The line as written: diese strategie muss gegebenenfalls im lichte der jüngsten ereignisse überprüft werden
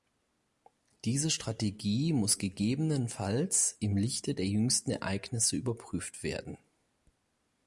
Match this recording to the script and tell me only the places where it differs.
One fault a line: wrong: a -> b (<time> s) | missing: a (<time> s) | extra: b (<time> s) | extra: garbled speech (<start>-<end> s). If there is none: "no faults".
no faults